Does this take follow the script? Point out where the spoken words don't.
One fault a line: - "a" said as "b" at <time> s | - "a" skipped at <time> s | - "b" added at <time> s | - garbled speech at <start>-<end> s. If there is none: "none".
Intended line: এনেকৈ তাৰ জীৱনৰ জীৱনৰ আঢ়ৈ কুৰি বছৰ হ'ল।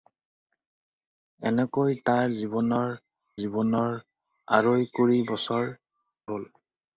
none